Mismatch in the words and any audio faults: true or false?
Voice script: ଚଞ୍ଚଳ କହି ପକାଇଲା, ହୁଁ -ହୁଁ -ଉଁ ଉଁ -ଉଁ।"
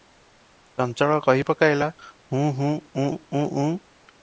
false